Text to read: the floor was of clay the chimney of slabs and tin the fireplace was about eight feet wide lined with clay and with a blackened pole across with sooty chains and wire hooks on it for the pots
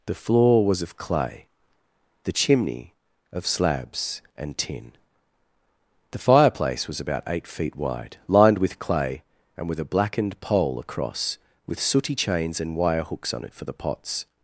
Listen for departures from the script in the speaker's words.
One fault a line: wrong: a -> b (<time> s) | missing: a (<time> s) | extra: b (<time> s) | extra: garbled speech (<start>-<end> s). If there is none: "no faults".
no faults